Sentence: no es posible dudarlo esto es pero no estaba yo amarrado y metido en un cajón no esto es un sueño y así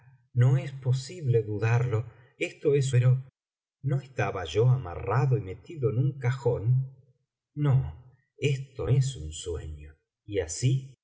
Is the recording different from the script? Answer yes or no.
no